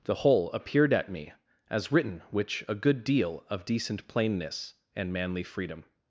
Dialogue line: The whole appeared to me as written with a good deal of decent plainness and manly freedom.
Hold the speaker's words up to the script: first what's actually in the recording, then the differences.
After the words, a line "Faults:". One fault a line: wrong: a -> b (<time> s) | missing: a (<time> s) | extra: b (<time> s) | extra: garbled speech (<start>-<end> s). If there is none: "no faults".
The whole appeared at me as written which a good deal of decent plainness and manly freedom.
Faults:
wrong: to -> at (0.9 s)
wrong: with -> which (2.3 s)